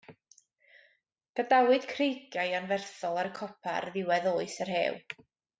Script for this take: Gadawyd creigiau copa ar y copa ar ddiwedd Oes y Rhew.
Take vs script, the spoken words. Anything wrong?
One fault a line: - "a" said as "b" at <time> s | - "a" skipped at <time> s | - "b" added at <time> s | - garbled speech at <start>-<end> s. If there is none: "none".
- "copa" said as "anferthol" at 2.6 s